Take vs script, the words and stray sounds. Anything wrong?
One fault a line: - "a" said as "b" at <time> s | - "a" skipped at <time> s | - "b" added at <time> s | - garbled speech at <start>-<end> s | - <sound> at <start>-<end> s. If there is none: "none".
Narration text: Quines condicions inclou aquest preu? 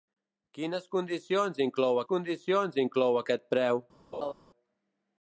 - "condicions inclou" added at 2.1 s
- laugh at 4.1-4.3 s